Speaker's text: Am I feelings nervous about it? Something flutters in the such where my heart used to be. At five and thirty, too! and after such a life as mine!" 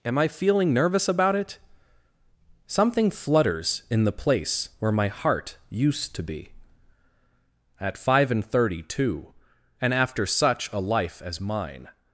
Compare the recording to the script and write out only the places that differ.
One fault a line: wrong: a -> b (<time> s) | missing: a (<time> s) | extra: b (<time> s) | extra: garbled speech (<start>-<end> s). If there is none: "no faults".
wrong: feelings -> feeling (0.3 s)
wrong: such -> place (4.1 s)